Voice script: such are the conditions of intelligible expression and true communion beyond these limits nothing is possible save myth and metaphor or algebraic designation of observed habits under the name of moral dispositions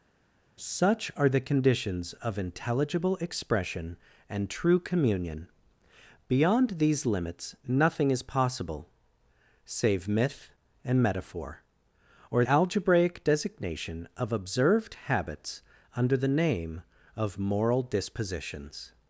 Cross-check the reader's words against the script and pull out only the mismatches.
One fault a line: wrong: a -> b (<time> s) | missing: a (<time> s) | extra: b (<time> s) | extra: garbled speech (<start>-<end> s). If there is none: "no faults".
no faults